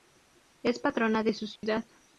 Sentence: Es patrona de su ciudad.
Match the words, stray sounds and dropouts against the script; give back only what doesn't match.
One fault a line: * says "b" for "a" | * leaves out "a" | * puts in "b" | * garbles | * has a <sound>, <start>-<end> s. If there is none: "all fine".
* has a dropout, 1.6-1.6 s